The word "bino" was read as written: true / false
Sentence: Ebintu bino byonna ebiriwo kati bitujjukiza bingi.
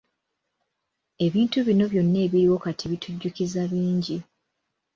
true